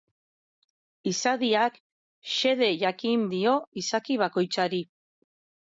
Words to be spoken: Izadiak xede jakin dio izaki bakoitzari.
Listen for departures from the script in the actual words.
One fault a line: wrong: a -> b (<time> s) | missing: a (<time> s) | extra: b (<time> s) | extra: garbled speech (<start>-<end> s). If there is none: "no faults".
no faults